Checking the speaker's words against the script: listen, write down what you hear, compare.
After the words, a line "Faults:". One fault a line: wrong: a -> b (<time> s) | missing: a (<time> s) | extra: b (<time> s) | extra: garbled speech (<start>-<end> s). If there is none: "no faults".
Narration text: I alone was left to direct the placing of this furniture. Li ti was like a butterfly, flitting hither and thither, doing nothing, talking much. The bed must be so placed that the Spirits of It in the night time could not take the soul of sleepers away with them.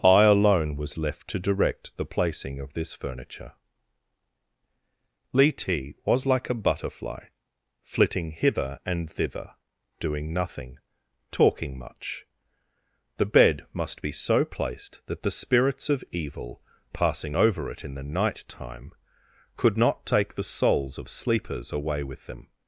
I alone was left to direct the placing of this furniture. Li ti was like a butterfly, flitting hither and thither, doing nothing, talking much. The bed must be so placed that the Spirits of Evil passing over it in the night time could not take the souls of sleepers away with them.
Faults:
extra: Evil passing over (16.1 s)
wrong: soul -> souls (20.4 s)